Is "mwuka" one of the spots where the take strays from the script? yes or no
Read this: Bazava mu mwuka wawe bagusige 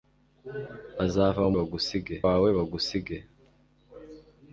yes